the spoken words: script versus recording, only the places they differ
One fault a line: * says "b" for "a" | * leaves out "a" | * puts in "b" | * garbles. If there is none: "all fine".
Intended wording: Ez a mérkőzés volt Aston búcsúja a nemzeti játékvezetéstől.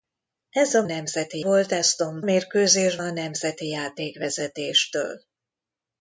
* says "nemzeti" for "mérkőzés"
* says "mérkőzés" for "búcsúja"